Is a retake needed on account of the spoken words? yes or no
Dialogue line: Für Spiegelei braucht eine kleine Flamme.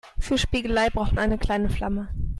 no